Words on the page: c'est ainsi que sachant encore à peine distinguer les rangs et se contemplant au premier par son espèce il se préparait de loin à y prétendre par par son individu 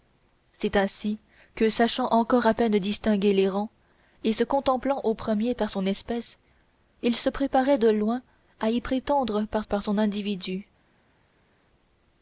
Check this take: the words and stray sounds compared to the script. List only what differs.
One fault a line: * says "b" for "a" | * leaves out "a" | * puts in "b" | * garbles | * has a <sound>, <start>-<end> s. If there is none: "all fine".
all fine